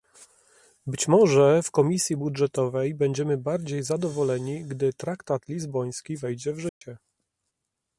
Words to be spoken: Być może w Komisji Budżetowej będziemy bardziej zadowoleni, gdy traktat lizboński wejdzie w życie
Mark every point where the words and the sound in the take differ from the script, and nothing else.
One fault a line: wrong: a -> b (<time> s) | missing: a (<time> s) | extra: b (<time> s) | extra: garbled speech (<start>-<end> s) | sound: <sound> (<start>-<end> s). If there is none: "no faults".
sound: dropout (6.7-6.8 s)